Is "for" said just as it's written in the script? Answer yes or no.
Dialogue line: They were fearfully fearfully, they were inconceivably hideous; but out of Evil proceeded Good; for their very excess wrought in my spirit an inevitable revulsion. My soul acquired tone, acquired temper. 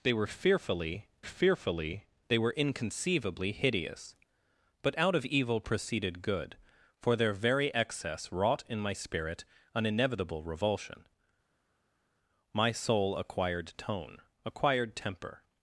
yes